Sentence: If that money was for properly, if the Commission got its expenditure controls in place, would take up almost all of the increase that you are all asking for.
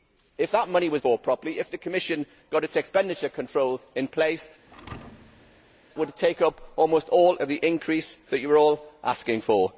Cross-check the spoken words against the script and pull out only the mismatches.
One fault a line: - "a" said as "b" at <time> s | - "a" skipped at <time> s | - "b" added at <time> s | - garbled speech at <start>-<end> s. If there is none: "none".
none